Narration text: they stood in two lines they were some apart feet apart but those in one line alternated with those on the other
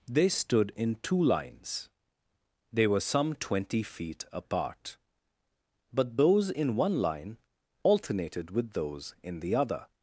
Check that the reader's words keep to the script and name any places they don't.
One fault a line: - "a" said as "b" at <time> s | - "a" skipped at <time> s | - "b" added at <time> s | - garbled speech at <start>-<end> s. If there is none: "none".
- "apart" said as "twenty" at 3.4 s
- "on" said as "in" at 9.2 s